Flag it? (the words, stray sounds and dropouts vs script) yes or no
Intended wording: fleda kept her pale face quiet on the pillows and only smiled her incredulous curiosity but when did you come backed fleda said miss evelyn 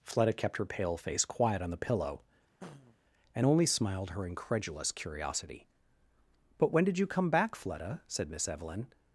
yes